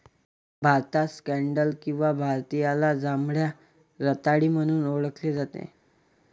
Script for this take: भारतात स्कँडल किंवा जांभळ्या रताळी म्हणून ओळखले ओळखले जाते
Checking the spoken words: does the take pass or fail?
fail